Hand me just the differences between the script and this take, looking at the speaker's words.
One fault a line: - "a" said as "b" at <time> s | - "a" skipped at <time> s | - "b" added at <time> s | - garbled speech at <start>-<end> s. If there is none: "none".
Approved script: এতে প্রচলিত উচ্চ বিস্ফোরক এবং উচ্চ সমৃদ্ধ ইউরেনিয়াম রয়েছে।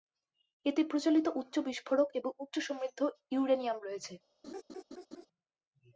none